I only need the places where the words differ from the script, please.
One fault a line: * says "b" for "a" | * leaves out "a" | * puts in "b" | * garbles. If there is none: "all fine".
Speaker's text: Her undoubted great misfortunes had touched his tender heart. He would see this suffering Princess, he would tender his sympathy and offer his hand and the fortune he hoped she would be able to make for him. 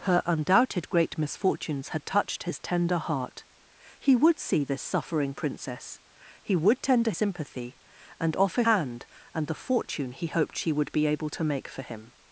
* leaves out "his"
* leaves out "his"